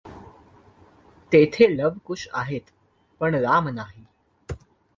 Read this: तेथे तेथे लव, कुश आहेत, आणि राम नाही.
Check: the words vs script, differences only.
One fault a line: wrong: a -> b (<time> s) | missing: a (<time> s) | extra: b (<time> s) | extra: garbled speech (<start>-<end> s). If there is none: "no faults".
missing: तेथे (1.7 s)
wrong: आणि -> पण (3.2 s)